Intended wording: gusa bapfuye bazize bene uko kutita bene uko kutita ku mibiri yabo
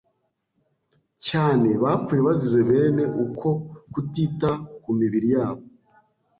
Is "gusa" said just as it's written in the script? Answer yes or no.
no